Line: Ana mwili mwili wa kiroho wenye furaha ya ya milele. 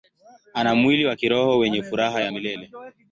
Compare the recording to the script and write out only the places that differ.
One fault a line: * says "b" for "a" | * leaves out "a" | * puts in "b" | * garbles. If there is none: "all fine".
* leaves out "mwili"
* leaves out "ya"